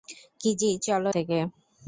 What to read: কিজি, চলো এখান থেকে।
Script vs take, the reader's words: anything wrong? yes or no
yes